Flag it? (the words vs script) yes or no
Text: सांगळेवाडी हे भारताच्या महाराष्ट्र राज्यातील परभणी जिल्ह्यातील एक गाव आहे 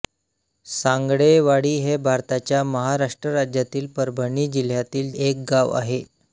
no